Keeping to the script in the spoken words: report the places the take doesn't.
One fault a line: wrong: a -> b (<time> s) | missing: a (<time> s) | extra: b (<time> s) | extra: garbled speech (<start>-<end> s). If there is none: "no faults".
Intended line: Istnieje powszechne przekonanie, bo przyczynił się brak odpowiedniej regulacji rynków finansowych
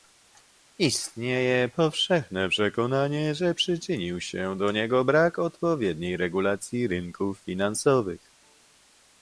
wrong: bo -> że (3.4 s)
extra: do niego (4.6 s)